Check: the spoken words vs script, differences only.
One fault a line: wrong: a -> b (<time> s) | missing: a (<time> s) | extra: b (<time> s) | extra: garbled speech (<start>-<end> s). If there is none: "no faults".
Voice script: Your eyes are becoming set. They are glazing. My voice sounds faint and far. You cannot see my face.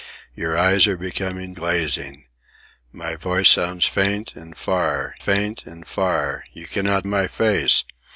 missing: set They are (1.6 s)
extra: faint and far (5.2 s)
missing: see (7.1 s)